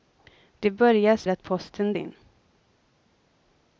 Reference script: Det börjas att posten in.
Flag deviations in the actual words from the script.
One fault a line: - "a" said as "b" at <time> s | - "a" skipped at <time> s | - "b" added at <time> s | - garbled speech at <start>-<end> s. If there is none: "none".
none